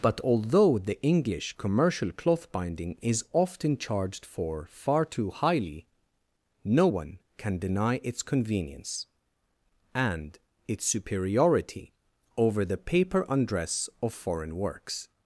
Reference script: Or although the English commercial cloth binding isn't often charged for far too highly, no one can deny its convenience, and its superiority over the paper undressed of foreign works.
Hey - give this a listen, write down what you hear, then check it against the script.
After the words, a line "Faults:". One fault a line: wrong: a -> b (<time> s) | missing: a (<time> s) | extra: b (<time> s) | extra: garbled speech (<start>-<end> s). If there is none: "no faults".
But although the English commercial cloth binding is often charged for far too highly, no one can deny its convenience, and its superiority over the paper undress of foreign works.
Faults:
wrong: Or -> But (0.0 s)
wrong: isn't -> is (3.0 s)
wrong: undressed -> undress (13.3 s)